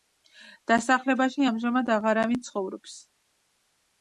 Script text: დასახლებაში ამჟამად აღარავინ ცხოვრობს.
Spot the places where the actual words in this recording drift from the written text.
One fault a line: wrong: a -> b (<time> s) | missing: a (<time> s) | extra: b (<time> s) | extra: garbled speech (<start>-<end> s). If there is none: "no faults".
no faults